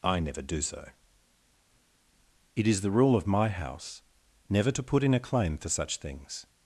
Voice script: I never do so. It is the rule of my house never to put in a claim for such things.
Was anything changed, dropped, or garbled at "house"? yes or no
no